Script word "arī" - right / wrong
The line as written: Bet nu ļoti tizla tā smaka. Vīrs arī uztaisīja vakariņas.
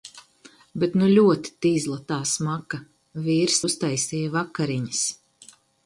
wrong